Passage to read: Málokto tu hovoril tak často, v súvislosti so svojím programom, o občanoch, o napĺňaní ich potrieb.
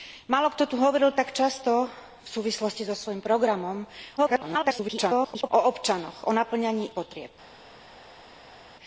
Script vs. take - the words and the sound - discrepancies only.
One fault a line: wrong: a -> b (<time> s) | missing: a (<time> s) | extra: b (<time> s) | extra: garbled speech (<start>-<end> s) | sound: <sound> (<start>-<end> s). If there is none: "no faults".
extra: garbled speech (4.2-5.5 s)
missing: ich (6.9 s)